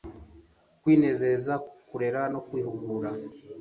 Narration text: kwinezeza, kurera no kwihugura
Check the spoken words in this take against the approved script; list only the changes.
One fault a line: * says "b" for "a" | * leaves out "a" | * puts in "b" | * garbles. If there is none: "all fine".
all fine